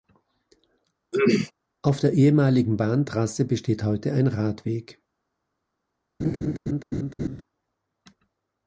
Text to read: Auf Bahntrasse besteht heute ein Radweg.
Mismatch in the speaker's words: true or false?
true